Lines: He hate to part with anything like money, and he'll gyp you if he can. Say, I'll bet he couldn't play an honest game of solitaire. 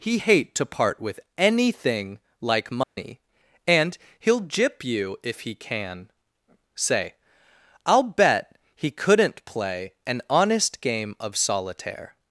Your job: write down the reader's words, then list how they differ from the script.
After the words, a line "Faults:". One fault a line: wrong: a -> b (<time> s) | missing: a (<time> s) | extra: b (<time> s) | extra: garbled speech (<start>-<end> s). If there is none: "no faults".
He hate to part with anything like money, and he'll gyp you if he can. Say, I'll bet he couldn't play an honest game of solitaire.
Faults:
no faults